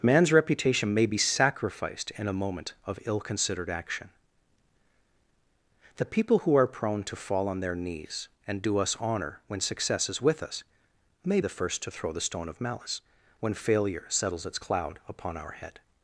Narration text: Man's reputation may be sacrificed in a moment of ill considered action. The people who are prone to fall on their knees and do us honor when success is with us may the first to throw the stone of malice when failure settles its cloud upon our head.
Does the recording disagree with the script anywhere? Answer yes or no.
no